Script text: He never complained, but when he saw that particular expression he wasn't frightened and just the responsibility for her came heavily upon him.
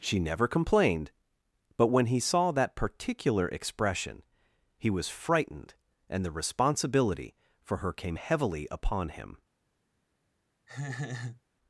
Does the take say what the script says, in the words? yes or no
no